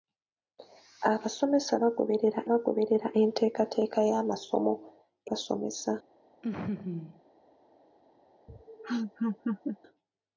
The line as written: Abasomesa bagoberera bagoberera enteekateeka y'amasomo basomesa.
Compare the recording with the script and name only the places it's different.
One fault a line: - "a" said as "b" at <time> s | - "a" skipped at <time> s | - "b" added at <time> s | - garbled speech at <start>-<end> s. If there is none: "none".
none